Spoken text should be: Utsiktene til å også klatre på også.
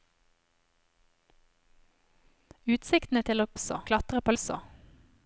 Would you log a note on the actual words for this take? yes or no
no